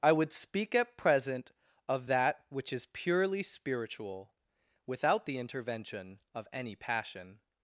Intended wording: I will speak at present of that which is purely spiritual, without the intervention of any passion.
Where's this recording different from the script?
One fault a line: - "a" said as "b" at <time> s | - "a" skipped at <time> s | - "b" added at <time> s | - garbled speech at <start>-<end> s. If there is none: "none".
- "will" said as "would" at 0.1 s